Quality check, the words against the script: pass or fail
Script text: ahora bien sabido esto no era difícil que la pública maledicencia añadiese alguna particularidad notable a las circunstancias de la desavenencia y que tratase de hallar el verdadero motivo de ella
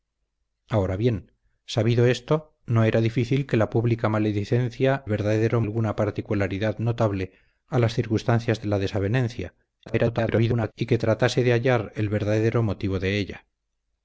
fail